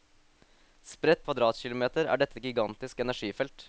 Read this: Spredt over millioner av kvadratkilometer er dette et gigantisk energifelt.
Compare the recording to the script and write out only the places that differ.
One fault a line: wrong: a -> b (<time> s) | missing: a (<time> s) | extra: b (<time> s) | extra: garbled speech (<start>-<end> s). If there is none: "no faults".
missing: over millioner (1.3 s)